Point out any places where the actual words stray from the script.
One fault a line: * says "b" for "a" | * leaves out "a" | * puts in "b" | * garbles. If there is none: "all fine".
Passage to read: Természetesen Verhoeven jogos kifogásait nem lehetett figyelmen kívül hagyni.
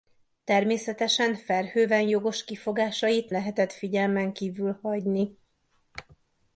* leaves out "nem"